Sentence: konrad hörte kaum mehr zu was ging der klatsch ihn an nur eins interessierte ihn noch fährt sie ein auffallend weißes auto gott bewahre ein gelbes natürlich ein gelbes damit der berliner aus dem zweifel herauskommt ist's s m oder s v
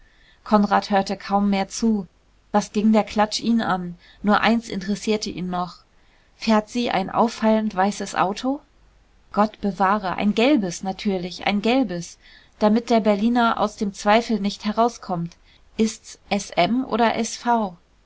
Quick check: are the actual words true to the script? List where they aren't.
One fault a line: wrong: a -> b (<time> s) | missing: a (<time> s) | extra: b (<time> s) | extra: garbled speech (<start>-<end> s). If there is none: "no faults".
extra: nicht (14.4 s)